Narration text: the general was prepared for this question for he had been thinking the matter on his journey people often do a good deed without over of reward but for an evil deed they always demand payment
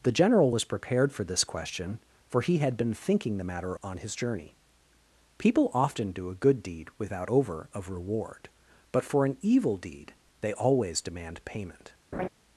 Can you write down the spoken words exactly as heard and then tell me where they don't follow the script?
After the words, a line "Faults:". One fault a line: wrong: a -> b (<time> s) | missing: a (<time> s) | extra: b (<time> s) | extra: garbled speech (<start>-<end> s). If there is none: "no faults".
the general was prepared for this question for he had been thinking the matter on his journey people often do a good deed without over of reward but for an evil deed they always demand payment
Faults:
no faults